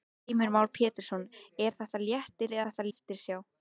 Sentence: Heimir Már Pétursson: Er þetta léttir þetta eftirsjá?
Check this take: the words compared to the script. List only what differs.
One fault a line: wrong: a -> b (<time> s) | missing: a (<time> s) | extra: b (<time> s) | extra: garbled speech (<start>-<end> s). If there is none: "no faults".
no faults